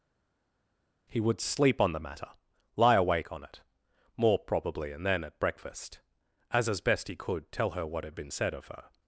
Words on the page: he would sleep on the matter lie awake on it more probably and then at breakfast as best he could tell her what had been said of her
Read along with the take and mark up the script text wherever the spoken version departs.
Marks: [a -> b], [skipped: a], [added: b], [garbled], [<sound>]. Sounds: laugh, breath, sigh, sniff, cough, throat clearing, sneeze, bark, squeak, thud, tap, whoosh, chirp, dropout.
he would sleep on the matter lie awake on it more probably and then at breakfast as [added: as] best he could tell her what had been said of her